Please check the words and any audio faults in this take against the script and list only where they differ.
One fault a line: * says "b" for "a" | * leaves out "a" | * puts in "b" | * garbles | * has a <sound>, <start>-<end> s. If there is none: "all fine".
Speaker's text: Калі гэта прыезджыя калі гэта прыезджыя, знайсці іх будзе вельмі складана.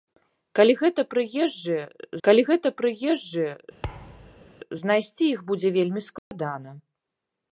* has a thud, 3.8-4.5 s
* has a dropout, 6.2-6.3 s